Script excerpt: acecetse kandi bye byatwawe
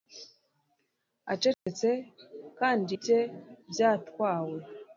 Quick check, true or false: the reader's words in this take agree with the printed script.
true